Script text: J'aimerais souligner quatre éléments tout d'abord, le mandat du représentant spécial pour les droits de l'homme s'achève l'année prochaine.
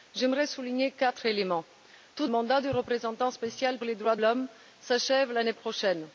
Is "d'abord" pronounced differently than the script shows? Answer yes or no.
yes